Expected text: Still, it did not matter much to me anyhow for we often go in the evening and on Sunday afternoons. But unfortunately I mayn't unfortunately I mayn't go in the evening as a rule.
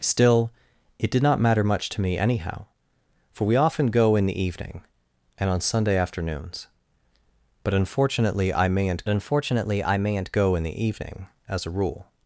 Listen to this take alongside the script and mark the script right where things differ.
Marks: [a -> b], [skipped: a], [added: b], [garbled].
Still, it did not matter much to me anyhow for we often go in the evening and on Sunday afternoons. But unfortunately I mayn't unfortunately I mayn't go in the evening as a rule.